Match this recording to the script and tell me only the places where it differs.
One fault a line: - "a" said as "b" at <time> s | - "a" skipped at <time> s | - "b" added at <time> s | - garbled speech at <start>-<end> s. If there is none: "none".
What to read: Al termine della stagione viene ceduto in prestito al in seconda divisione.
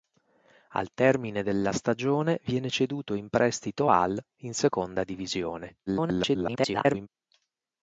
- garbled speech at 5.9-7.1 s